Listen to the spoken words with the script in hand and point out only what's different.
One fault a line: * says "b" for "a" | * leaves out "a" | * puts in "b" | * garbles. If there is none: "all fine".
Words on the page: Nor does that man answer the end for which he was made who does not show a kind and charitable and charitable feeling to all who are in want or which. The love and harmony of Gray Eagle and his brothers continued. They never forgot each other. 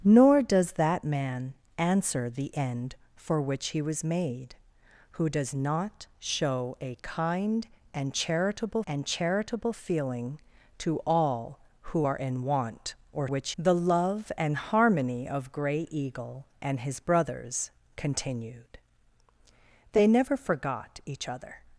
all fine